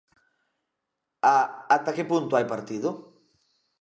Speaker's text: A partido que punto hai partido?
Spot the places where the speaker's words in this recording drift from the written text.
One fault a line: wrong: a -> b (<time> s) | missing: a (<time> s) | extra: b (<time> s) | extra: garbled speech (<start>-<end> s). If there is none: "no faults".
wrong: partido -> ata (1.8 s)